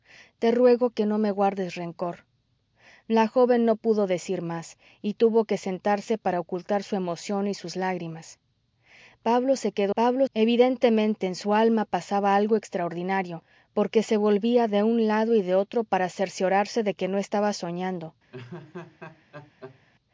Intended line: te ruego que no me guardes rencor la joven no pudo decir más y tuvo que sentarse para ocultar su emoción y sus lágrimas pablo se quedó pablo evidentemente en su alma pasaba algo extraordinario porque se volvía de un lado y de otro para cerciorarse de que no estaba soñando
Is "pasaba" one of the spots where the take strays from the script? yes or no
no